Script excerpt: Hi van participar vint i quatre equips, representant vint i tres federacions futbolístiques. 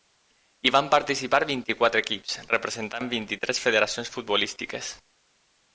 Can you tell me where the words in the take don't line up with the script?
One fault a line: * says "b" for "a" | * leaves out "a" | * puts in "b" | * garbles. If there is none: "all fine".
all fine